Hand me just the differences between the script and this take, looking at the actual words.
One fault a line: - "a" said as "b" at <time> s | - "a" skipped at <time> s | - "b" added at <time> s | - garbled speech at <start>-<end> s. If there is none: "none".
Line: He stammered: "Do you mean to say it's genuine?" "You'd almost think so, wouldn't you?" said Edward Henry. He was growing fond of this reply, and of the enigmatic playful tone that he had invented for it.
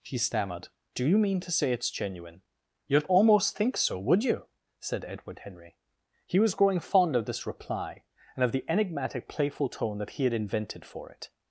- "wouldn't" said as "would" at 4.0 s